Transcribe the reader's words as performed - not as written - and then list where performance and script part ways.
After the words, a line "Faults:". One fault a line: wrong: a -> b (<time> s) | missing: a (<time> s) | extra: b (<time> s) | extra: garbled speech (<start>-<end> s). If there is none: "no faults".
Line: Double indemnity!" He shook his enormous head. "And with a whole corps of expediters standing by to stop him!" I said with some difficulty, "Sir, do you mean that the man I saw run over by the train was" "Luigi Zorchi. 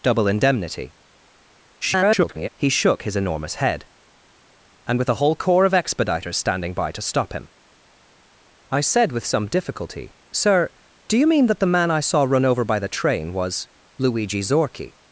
Double indemnity!" [garbled] He shook his enormous head. "And with a whole corps of expediters standing by to stop him!" I said with some difficulty, "Sir, do you mean that the man I saw run over by the train was" "Luigi Zorchi.
Faults:
extra: garbled speech (1.8-2.5 s)